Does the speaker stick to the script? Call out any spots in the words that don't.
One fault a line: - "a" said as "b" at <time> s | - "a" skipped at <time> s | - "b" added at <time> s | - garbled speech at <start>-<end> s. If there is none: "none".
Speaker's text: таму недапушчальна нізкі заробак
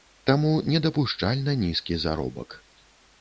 none